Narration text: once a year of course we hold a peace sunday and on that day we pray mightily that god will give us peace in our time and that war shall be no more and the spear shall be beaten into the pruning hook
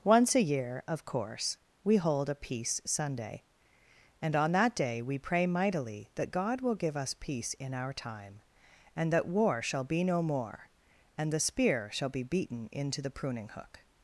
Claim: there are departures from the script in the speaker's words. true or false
false